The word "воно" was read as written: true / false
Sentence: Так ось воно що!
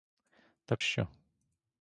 false